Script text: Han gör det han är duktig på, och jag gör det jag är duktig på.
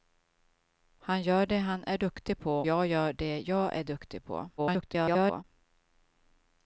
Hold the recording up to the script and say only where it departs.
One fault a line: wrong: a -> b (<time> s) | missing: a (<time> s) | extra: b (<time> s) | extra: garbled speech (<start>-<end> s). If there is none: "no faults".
missing: och (2.6 s)
extra: garbled speech (4.6-5.4 s)